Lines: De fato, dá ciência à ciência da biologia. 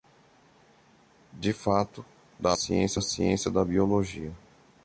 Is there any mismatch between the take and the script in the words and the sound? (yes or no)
no